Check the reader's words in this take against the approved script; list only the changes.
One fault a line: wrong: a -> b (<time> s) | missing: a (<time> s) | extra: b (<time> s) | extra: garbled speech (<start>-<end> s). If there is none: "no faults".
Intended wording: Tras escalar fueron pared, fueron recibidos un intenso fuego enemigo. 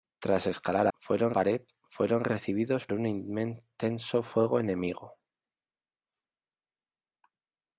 no faults